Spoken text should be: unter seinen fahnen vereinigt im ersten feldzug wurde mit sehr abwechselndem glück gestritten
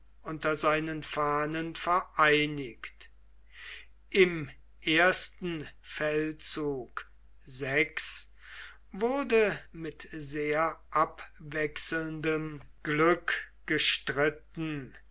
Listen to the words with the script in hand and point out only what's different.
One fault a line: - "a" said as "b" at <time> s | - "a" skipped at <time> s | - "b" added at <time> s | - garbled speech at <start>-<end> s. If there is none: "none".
none